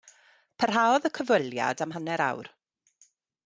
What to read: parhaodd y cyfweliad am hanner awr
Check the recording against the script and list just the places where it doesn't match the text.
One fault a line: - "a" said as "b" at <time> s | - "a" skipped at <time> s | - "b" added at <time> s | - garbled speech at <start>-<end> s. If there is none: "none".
none